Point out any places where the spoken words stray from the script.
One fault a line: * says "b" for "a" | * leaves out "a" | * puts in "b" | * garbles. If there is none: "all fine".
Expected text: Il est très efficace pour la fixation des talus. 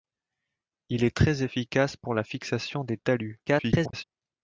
* garbles